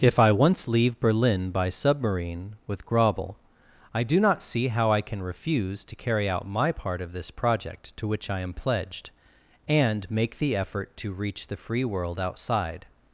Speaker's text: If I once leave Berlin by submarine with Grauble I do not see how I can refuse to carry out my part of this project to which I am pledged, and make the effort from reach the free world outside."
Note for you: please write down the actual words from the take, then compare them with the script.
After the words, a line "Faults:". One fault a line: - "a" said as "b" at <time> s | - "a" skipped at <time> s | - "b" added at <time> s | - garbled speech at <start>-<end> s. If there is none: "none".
If I once leave Berlin by submarine with Grauble I do not see how I can refuse to carry out my part of this project to which I am pledged, and make the effort to reach the free world outside."
Faults:
- "from" said as "to" at 11.0 s